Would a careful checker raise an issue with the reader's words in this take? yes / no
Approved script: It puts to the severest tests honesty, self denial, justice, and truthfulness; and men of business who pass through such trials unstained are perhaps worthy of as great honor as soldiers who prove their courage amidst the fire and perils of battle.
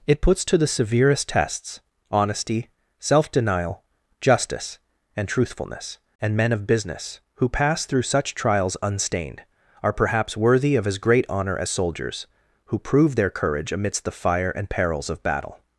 no